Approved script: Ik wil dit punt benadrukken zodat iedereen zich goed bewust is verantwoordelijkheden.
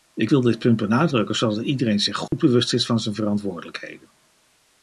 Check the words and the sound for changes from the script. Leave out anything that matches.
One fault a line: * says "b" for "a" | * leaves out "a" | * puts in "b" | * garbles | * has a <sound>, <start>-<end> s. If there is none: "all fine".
* has a dropout, 2.3-2.3 s
* puts in "van zijn"